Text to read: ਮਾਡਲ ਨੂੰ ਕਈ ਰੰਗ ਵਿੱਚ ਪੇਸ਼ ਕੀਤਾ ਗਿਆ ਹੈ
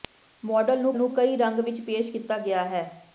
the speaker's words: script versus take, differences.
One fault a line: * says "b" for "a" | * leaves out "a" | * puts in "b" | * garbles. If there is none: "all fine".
* puts in "ਨੂੰ"